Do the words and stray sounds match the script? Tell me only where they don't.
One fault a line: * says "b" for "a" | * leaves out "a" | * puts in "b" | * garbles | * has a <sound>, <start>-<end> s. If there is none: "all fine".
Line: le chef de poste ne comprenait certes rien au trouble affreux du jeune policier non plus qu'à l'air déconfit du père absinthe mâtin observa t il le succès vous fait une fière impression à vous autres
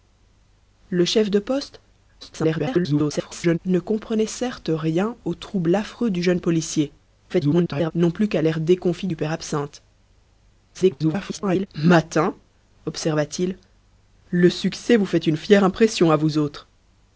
* garbles
* garbles
* garbles